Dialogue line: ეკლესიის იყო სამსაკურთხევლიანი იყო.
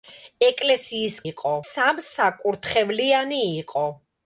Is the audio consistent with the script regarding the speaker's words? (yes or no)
yes